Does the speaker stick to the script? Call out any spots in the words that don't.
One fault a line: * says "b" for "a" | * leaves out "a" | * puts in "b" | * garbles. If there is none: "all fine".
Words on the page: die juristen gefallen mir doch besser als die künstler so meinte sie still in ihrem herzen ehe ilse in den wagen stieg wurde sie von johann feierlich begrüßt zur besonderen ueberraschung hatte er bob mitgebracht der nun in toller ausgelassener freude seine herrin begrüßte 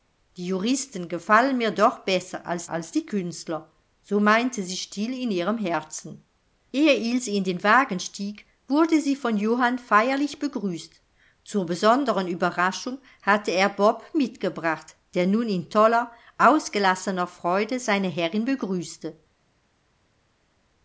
* puts in "als"